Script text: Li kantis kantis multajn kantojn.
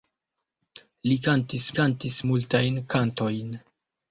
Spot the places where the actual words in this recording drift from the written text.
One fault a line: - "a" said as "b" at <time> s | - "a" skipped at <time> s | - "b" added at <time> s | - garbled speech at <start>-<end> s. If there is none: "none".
none